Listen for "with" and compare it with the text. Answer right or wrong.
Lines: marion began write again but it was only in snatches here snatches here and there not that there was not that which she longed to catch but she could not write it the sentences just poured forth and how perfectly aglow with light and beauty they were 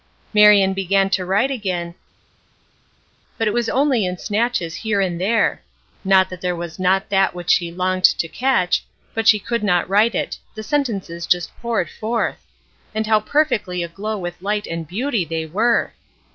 right